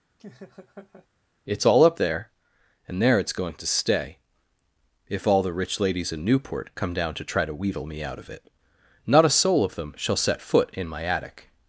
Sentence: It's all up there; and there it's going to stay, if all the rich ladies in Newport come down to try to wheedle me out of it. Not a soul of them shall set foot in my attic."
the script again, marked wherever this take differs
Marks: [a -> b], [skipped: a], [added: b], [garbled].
It's all up there; and there it's going to stay, if all the rich ladies in Newport come down to try to wheedle me out of it. Not a soul of them shall set foot in my attic."